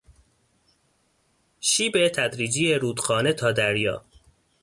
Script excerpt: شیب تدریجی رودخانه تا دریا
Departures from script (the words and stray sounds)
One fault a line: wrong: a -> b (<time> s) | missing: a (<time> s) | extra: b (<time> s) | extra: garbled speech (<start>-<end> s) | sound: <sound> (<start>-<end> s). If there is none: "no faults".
no faults